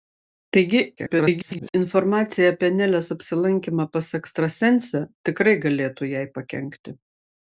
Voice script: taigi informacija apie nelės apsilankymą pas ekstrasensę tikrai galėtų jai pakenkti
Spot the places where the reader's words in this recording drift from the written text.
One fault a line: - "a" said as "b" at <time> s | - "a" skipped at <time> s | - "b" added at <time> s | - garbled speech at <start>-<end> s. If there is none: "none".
- garbled speech at 1.0-1.7 s